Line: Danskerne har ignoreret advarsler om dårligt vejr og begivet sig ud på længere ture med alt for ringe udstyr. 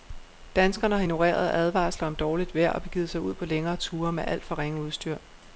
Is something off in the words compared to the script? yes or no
no